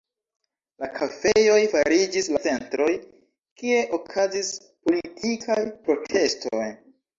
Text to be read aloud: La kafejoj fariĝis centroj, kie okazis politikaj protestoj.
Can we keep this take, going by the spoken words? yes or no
yes